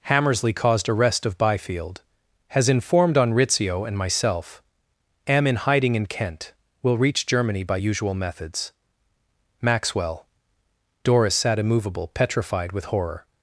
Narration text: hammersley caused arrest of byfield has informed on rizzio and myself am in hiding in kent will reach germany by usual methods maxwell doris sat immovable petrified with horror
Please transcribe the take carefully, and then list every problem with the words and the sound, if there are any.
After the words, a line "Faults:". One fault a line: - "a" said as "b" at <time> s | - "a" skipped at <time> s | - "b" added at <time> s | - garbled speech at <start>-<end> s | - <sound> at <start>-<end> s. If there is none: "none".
hammersley caused arrest of byfield has informed on rizzio and myself am in hiding in kent will reach germany by usual methods maxwell doris sat immovable petrified with horror
Faults:
none